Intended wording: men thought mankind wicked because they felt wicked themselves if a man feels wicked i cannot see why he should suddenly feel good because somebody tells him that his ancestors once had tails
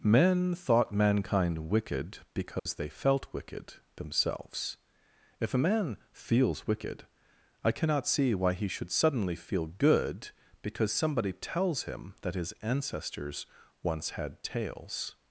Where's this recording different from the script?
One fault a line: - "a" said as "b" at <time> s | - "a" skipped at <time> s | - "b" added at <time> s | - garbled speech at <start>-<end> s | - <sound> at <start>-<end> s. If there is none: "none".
- dropout at 2.6-2.7 s